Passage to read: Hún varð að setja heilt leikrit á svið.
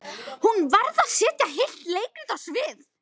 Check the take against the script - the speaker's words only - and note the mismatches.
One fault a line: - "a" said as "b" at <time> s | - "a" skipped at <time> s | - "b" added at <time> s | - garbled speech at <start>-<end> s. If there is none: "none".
none